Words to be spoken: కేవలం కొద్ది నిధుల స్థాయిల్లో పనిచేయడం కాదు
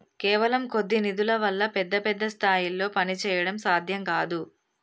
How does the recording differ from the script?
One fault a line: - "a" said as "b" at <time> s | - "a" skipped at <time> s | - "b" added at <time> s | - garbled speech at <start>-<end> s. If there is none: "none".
- "వల్ల పెద్ద పెద్ద" added at 1.4 s
- "సాధ్యం" added at 3.6 s